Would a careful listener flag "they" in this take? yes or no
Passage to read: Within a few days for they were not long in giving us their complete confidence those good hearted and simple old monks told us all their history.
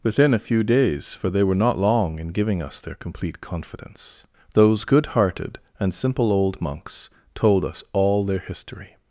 no